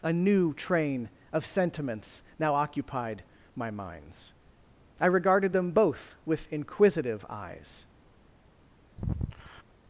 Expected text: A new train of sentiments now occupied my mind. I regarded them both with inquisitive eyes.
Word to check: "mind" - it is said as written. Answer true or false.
false